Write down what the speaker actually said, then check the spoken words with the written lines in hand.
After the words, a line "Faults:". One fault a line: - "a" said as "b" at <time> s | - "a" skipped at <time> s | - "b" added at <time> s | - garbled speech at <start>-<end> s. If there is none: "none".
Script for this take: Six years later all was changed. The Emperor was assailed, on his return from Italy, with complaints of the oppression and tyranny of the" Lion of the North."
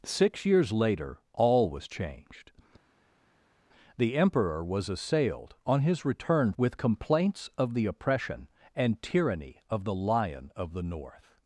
Six years later all was changed. The Emperor was assailed, on his return with complaints of the oppression and tyranny of the" Lion of the North."
Faults:
- "from Italy" skipped at 6.5 s